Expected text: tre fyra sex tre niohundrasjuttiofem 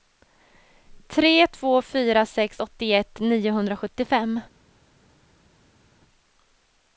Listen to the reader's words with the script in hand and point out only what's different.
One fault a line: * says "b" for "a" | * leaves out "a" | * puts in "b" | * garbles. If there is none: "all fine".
* puts in "två"
* says "åttioett" for "tre"